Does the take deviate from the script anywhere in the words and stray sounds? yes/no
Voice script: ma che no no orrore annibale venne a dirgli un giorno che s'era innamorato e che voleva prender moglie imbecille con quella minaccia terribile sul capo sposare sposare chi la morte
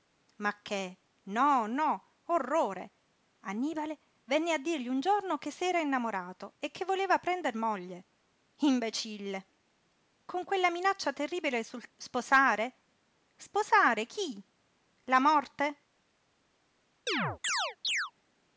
yes